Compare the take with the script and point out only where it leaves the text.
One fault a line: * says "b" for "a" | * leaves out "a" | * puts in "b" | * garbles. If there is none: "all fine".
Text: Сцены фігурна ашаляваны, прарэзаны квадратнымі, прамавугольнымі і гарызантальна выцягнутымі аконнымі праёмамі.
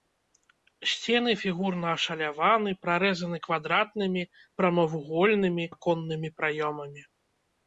* leaves out "і гарызантальна выцягнутымі"